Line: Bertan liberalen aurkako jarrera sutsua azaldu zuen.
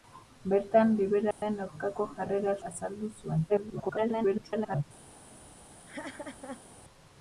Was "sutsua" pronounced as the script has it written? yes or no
no